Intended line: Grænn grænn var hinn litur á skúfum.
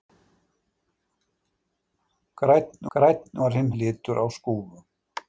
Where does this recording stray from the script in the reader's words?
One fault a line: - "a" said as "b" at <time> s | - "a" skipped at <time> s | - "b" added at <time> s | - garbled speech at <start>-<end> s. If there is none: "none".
none